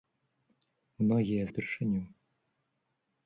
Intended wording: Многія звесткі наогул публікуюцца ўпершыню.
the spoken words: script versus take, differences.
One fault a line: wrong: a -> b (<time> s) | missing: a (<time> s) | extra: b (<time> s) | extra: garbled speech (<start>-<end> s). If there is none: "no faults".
missing: звесткі наогул публікуюцца (1.4 s)